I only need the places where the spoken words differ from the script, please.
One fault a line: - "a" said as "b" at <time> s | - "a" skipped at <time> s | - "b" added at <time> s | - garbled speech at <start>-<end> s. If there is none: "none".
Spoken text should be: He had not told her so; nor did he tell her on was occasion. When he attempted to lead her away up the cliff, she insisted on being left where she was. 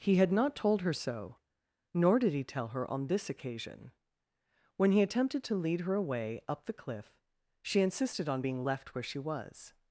- "was" said as "this" at 3.0 s